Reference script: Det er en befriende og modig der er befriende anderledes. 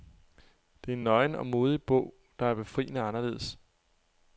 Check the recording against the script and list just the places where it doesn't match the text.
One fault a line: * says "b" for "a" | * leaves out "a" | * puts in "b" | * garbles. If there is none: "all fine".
* says "nøgen" for "befriende"
* puts in "bog"